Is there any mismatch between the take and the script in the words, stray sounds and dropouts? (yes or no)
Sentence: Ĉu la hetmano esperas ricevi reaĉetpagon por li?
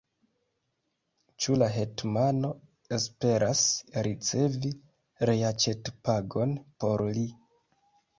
no